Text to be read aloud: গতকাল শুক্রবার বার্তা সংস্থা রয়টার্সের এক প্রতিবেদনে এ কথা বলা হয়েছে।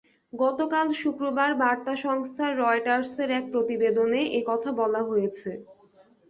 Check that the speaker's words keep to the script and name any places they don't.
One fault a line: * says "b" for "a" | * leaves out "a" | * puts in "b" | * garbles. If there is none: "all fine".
all fine